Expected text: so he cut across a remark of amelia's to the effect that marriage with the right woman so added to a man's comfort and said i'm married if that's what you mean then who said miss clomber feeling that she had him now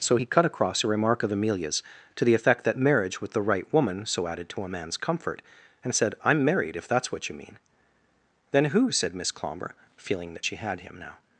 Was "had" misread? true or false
false